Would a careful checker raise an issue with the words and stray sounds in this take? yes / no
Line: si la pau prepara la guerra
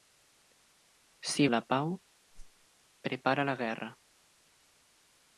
yes